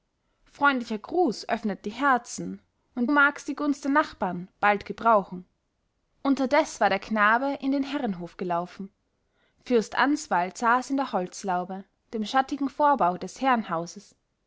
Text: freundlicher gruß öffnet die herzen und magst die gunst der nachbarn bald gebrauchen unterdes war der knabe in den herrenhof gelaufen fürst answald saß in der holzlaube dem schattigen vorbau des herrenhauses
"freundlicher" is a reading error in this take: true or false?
false